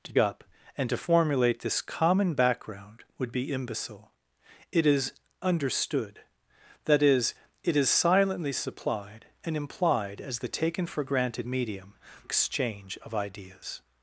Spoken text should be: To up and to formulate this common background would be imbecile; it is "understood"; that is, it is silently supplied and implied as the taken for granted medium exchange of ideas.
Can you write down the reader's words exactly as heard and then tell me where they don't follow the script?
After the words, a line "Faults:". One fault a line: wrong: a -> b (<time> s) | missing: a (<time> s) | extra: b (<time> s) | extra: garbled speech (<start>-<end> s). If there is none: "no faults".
To up and to formulate this common background would be imbecile; it is "understood"; that is, it is silently supplied and implied as the taken for granted medium exchange of ideas.
Faults:
no faults